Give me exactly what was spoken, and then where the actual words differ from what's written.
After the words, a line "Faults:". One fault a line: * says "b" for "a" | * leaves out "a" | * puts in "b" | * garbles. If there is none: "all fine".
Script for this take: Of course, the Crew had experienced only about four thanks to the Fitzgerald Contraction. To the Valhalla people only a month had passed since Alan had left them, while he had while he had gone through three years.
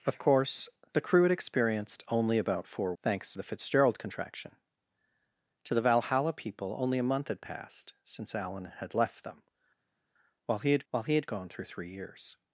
Of course, the Crew had experienced only about four thanks to the Fitzgerald Contraction. To the Valhalla people only a month had passed since Alan had left them, while he had while he had gone through three years.
Faults:
all fine